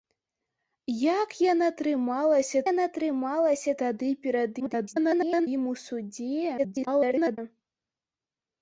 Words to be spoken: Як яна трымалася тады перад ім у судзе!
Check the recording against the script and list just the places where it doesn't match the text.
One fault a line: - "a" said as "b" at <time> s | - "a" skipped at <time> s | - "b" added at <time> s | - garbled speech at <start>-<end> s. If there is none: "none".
- "яна трымалася" added at 2.7 s
- garbled speech at 4.6-5.5 s
- garbled speech at 6.6-7.4 s